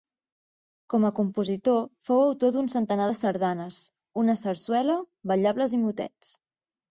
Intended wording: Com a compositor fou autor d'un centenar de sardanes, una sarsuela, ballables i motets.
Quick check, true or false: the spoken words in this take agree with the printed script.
true